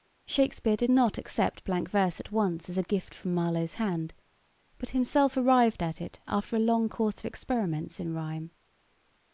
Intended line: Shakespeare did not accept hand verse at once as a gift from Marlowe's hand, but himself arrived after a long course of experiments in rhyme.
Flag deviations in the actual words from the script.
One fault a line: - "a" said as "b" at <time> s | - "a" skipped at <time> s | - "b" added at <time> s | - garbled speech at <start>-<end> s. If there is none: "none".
- "hand" said as "blank" at 1.6 s
- "at it" added at 5.8 s